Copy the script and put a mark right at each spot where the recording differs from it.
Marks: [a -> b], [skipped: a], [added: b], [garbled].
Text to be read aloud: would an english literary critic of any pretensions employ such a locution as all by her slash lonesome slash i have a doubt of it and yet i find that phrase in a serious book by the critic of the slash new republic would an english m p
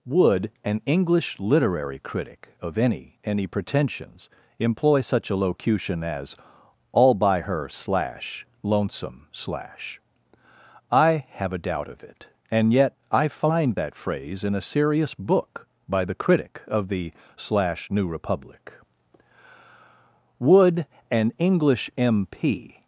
would an english literary critic of any [added: any] pretensions employ such a locution as all by her slash lonesome slash i have a doubt of it and yet i find that phrase in a serious book by the critic of the slash new republic would an english m p